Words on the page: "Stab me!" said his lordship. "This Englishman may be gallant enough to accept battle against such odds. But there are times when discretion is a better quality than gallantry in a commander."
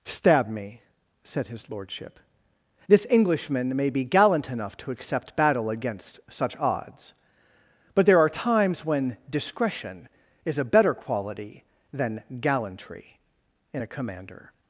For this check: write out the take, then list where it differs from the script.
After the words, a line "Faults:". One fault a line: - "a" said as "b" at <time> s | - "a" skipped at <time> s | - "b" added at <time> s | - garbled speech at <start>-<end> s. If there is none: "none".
"Stab me!" said his lordship. "This Englishman may be gallant enough to accept battle against such odds. But there are times when discretion is a better quality than gallantry in a commander."
Faults:
none